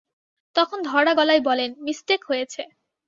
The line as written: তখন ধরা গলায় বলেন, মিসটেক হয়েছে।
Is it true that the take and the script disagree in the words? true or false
false